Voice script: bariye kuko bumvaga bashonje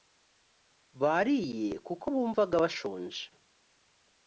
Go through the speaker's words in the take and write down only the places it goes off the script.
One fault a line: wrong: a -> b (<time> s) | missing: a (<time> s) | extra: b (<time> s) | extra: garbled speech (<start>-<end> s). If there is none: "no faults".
no faults